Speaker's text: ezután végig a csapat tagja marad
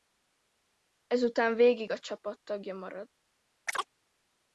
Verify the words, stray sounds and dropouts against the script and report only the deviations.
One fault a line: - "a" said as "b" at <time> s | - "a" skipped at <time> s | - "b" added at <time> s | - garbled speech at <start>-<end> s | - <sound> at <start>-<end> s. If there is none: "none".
- chirp at 3.7-3.9 s